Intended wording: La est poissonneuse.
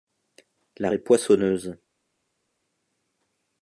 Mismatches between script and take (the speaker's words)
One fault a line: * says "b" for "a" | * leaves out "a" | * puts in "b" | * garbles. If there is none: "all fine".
all fine